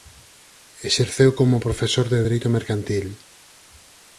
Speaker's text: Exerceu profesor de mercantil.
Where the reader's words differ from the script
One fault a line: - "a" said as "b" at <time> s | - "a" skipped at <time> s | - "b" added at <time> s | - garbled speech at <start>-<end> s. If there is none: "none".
- "como" added at 1.4 s
- "dereito" added at 2.2 s